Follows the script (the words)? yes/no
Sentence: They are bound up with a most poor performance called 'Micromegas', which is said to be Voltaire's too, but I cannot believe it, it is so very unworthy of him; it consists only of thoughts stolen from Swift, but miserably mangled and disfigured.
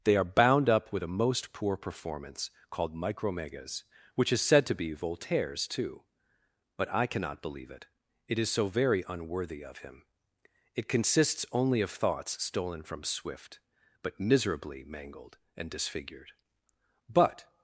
no